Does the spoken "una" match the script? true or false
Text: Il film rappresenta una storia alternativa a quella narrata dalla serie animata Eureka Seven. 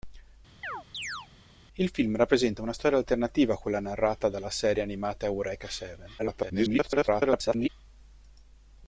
true